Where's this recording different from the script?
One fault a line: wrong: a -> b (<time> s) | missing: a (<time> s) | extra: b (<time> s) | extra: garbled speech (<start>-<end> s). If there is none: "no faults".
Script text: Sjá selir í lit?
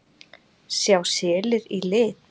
no faults